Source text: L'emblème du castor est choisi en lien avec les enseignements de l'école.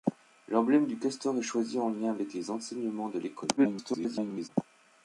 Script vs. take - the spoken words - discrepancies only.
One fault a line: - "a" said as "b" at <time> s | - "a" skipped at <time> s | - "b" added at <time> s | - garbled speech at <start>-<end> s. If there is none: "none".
- garbled speech at 3.6-4.5 s